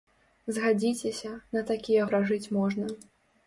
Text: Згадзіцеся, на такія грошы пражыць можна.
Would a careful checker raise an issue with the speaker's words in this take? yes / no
yes